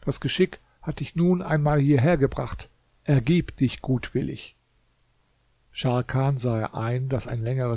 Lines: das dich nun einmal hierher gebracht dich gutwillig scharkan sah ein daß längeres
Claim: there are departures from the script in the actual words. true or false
true